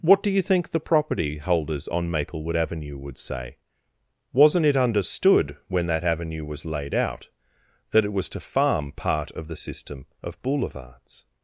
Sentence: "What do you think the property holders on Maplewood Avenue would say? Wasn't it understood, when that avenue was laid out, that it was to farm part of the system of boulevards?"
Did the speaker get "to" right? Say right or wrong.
right